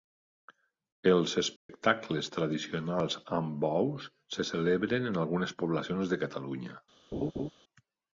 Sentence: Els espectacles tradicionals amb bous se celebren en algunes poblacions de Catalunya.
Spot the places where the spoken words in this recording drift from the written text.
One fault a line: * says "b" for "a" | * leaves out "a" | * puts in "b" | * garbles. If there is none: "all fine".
all fine